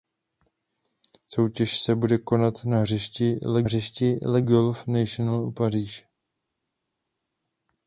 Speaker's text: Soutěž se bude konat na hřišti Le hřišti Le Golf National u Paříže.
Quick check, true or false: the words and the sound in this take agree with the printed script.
true